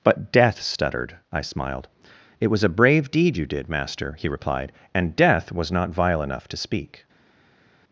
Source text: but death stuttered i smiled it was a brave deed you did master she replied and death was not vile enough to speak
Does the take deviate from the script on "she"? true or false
true